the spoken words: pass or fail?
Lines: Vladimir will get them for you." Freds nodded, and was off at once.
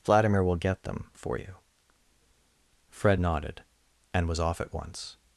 fail